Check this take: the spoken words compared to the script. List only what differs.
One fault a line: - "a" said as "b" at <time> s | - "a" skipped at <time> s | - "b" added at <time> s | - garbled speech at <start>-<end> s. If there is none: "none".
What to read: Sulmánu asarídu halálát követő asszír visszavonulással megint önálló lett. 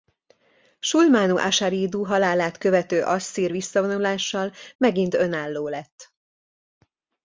none